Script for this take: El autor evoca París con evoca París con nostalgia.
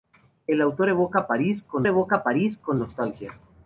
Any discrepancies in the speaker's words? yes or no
no